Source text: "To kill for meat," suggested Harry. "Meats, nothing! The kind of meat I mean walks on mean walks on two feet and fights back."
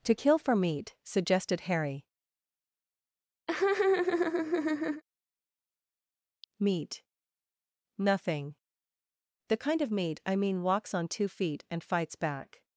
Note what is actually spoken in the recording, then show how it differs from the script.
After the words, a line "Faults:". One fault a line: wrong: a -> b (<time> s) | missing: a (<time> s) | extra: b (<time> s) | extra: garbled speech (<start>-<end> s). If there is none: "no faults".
"To kill for meat," suggested Harry. "Meat, nothing! The kind of meat I mean walks on two feet and fights back."
Faults:
wrong: Meats -> Meat (6.6 s)
missing: mean walks on (11.1 s)